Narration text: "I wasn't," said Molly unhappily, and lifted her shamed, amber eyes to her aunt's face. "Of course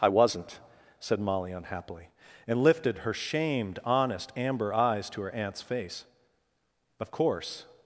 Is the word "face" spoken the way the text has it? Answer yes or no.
yes